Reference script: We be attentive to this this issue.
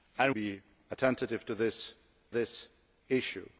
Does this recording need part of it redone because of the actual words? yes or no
no